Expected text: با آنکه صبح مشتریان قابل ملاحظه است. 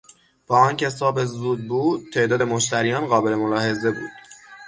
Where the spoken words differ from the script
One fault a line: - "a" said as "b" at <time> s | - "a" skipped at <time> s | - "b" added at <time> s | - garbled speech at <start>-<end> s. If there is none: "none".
- "زود بود تعداد" added at 1.2 s
- "است" said as "بود" at 3.9 s